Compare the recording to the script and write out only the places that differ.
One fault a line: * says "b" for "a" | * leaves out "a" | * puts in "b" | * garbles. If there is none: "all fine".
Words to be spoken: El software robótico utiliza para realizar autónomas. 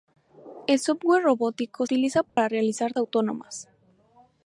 all fine